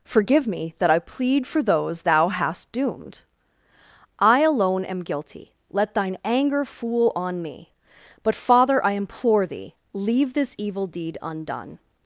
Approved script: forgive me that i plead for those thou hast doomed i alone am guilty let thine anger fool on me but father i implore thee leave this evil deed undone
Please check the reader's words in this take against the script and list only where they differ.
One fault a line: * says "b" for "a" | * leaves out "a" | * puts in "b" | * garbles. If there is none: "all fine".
all fine